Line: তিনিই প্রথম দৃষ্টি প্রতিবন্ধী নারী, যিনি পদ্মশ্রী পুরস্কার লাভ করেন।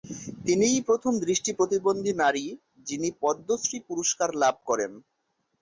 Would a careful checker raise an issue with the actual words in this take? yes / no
no